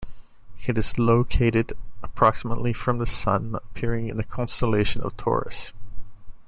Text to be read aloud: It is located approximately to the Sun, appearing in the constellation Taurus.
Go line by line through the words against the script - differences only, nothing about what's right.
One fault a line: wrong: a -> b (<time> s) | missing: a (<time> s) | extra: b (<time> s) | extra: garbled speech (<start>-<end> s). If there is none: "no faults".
wrong: to -> from (2.7 s)
extra: of (5.0 s)